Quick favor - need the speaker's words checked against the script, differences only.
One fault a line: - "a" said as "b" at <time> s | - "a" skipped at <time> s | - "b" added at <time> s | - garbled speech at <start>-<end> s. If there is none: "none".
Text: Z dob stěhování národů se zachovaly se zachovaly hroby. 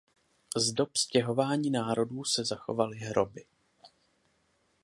- "se zachovaly" skipped at 3.0 s